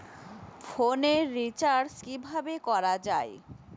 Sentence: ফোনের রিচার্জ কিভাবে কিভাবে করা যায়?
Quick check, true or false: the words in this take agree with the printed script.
false